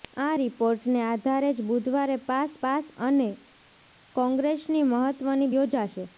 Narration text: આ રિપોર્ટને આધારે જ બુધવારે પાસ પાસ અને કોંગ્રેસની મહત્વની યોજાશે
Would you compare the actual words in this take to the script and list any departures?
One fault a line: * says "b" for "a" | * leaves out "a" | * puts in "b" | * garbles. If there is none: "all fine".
all fine